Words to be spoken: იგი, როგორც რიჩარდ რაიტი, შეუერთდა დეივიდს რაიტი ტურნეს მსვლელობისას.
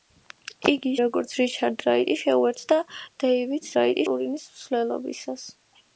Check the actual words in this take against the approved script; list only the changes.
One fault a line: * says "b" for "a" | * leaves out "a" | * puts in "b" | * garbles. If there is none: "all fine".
all fine